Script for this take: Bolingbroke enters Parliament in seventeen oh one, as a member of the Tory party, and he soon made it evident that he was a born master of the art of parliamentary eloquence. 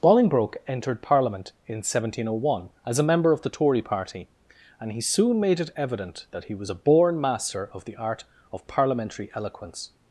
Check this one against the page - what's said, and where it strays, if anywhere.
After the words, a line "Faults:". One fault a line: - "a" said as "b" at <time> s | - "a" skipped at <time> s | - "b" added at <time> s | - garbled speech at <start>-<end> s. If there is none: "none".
Bolingbroke entered Parliament in seventeen oh one, as a member of the Tory party, and he soon made it evident that he was a born master of the art of parliamentary eloquence.
Faults:
- "enters" said as "entered" at 0.7 s